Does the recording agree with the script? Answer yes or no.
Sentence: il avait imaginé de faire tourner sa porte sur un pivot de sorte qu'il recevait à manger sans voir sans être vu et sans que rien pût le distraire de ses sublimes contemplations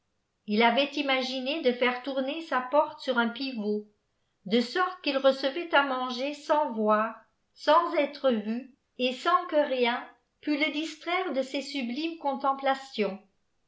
yes